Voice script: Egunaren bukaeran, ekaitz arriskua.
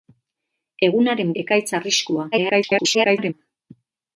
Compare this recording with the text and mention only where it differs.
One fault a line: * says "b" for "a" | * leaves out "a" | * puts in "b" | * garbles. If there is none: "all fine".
* leaves out "bukaeran"
* garbles